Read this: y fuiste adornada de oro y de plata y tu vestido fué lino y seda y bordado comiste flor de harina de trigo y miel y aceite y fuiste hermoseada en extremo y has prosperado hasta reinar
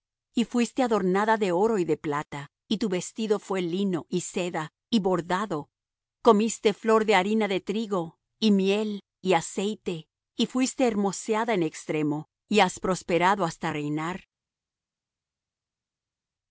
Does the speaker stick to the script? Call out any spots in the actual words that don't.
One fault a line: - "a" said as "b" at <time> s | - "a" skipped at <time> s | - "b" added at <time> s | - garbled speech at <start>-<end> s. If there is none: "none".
none